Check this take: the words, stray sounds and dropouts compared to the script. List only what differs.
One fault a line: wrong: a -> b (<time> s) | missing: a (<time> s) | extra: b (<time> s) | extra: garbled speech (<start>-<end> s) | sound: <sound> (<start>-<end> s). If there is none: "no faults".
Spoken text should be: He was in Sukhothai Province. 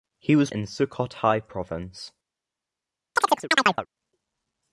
sound: chirp (3.2-3.9 s)